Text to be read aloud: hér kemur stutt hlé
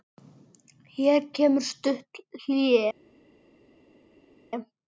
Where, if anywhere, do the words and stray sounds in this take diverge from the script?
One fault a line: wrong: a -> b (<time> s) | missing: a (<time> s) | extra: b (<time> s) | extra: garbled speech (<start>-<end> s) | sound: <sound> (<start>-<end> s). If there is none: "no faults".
no faults